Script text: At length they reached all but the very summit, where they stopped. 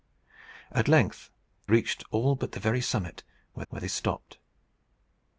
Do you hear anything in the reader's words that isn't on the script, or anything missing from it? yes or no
yes